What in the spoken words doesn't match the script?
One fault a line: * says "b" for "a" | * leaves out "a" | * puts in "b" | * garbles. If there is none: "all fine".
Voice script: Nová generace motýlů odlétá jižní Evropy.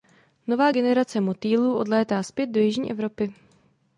* puts in "zpět do"